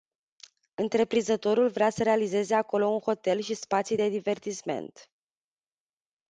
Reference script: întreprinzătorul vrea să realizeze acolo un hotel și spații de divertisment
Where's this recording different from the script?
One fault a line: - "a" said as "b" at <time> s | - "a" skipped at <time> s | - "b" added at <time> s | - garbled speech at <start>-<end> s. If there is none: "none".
none